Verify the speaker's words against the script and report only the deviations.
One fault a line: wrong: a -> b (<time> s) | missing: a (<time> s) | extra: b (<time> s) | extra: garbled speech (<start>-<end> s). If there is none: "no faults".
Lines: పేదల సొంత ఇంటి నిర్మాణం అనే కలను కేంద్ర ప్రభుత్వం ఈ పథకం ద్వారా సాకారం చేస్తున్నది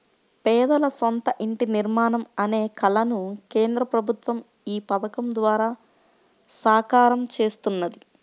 no faults